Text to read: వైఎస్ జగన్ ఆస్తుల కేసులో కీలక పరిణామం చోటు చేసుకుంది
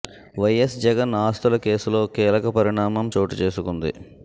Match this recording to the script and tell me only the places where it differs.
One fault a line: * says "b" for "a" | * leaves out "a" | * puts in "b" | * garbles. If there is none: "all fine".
all fine